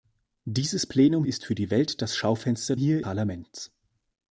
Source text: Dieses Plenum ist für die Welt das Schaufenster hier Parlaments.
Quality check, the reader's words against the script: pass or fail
pass